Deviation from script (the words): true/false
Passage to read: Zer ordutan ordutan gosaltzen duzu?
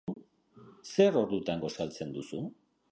true